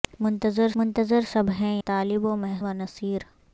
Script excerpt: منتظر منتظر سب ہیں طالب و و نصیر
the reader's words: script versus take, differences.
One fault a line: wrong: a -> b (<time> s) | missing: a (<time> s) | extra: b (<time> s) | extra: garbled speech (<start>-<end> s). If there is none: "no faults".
no faults